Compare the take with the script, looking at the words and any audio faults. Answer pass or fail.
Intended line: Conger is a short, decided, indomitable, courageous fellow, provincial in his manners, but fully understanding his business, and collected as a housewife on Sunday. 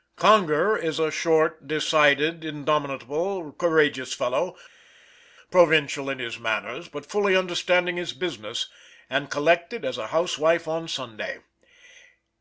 pass